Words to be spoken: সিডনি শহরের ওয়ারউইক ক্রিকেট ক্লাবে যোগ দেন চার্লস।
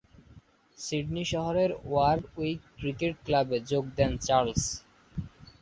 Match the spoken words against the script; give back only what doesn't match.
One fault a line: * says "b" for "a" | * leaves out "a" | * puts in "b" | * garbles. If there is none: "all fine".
all fine